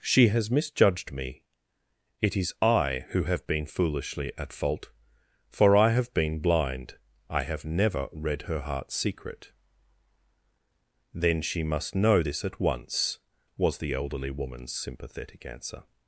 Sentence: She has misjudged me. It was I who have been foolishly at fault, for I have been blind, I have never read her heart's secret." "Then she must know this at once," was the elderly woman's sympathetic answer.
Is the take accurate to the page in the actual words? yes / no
no